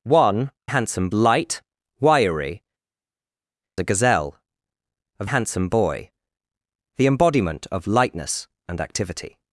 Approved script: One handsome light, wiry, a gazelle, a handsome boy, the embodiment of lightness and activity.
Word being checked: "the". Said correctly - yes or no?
yes